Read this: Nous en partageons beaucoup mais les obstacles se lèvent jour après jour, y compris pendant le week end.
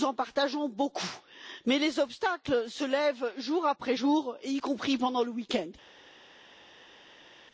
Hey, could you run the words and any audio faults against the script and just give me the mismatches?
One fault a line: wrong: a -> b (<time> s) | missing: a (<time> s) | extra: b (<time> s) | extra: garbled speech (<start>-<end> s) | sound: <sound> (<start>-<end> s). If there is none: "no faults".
no faults